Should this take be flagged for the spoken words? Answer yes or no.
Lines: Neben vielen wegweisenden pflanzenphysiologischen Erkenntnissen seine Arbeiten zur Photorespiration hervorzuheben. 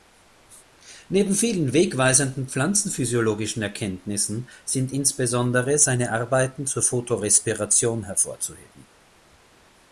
yes